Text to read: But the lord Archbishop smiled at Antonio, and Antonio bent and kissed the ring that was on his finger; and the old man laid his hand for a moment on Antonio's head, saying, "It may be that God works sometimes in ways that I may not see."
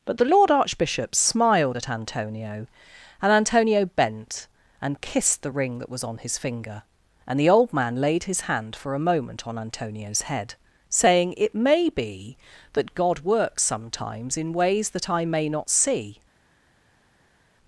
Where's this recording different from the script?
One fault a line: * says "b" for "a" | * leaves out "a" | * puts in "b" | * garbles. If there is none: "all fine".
all fine